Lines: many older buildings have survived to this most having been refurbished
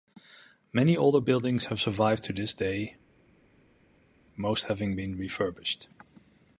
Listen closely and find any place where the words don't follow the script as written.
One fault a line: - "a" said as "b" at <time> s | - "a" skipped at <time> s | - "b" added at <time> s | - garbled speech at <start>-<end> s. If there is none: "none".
- "day" added at 2.5 s